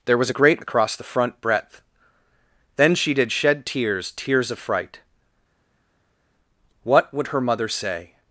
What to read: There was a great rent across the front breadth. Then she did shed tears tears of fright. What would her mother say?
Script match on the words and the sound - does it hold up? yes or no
no